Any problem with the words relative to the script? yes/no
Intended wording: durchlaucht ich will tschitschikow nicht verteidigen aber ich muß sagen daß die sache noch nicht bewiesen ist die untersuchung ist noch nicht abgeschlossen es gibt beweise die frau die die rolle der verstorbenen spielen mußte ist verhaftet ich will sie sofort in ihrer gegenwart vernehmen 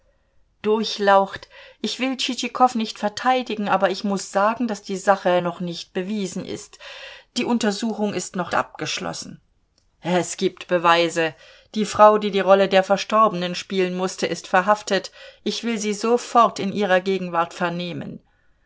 yes